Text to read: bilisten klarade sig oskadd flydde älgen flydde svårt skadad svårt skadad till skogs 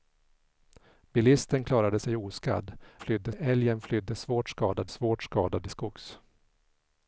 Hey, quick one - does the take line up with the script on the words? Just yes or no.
yes